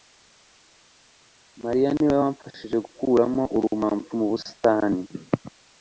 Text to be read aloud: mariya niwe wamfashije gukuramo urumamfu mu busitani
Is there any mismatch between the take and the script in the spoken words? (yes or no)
no